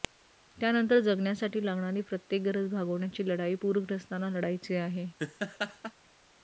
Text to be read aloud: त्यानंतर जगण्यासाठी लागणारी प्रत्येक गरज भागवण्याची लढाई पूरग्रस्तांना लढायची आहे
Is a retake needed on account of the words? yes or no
no